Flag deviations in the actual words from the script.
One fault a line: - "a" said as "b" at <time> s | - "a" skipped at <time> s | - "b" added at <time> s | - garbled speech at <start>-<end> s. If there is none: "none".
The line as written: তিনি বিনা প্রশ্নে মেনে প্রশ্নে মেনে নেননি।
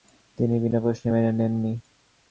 - "প্রশ্নে মেনে" skipped at 1.3 s